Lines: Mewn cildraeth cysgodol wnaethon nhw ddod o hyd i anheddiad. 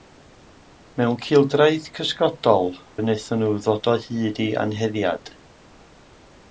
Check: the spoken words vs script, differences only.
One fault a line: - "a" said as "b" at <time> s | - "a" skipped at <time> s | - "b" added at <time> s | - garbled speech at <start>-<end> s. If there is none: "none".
none